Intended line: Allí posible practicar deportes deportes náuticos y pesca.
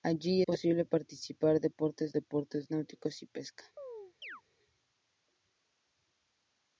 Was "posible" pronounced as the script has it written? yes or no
yes